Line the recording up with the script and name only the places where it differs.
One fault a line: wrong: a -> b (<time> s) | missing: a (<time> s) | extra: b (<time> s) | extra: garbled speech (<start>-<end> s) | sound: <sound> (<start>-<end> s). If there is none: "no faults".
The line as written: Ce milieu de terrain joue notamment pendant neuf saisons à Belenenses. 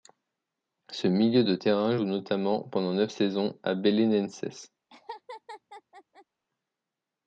sound: laugh (4.9-6.3 s)